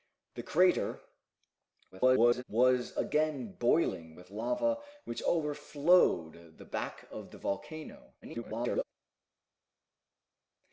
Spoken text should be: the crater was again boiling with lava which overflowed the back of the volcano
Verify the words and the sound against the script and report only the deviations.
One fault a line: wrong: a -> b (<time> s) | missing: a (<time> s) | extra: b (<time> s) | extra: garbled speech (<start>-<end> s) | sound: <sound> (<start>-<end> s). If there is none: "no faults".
extra: garbled speech (1.9-2.4 s)
extra: garbled speech (8.2-8.8 s)